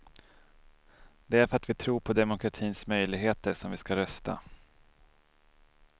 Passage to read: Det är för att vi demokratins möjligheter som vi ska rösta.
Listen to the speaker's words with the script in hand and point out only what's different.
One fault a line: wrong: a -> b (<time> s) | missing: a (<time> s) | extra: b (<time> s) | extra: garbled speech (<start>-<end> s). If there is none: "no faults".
extra: tror på (1.7 s)